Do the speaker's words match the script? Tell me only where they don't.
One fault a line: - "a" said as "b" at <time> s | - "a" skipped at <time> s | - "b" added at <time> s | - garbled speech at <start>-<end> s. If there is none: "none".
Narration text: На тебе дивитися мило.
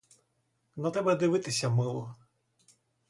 none